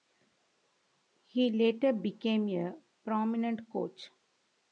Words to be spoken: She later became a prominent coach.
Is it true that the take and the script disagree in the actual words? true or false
true